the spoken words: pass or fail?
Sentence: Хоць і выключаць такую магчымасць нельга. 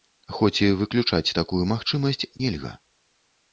pass